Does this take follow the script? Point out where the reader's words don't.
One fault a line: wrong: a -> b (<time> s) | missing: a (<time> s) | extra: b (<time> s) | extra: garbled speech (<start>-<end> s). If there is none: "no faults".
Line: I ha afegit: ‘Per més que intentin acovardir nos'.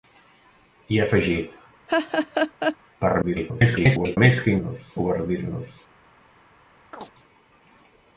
extra: garbled speech (3.2-4.2 s)
wrong: intentin -> nos (4.6 s)